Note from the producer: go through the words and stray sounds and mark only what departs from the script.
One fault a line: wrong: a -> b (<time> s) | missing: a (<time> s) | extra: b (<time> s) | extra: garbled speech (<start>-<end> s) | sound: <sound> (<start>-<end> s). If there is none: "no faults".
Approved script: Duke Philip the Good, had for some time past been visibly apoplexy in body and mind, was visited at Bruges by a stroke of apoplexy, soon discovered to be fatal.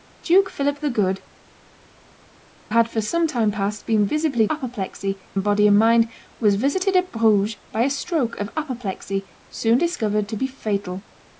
no faults